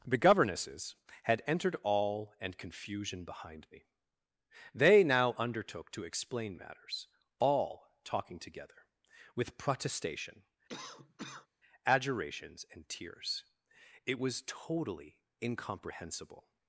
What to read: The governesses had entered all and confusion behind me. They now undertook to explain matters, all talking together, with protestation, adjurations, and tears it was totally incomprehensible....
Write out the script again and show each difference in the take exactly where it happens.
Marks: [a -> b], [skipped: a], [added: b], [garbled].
The governesses had entered all and confusion behind me. They now undertook to explain matters, all talking together, with protestation, adjurations, and tears it was totally incomprehensible....